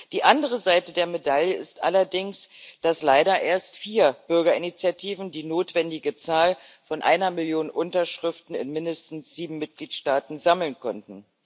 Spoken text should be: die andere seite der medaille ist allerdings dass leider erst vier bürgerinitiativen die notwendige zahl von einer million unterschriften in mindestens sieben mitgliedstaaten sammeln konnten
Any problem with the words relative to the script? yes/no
no